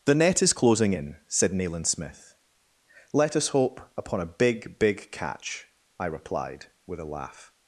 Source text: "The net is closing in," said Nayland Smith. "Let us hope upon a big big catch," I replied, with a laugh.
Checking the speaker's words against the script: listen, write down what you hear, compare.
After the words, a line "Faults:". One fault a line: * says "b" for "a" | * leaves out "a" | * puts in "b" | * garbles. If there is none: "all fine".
"The net is closing in," said Nayland Smith. "Let us hope upon a big big catch," I replied, with a laugh.
Faults:
all fine